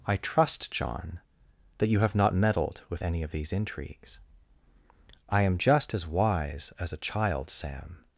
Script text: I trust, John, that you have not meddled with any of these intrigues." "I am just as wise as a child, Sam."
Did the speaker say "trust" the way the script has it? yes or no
yes